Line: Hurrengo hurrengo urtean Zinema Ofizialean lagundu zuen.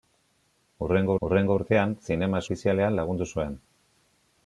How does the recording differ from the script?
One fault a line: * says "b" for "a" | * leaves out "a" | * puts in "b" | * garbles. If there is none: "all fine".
all fine